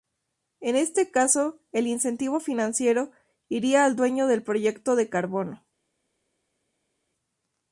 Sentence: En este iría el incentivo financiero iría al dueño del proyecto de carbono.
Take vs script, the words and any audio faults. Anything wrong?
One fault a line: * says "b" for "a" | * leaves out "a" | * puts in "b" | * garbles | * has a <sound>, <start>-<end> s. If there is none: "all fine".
* says "caso" for "iría"